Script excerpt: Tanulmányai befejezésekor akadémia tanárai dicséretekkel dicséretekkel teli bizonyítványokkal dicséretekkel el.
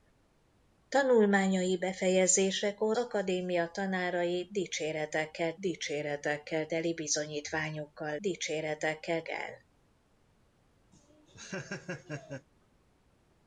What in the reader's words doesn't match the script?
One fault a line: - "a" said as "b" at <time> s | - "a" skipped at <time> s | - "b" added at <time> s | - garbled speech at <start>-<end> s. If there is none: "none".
none